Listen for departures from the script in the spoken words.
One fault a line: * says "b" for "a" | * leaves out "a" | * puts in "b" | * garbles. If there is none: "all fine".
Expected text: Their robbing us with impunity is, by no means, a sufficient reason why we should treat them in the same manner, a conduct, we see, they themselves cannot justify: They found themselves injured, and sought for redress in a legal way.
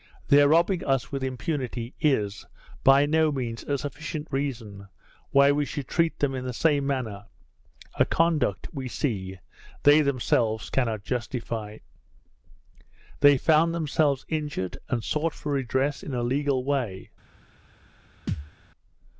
all fine